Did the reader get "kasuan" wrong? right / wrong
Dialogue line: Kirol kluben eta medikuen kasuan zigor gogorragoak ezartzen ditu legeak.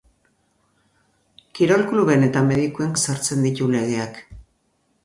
wrong